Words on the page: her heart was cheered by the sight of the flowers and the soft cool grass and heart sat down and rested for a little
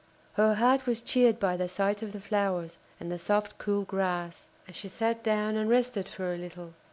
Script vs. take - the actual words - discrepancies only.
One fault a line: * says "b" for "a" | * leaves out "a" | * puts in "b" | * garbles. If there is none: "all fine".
* says "she" for "heart"